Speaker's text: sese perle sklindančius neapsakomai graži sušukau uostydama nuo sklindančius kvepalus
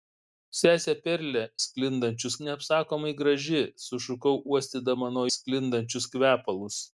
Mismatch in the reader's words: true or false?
false